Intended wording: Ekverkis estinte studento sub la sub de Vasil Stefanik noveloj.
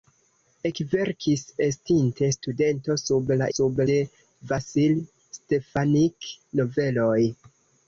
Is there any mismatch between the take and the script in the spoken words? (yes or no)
no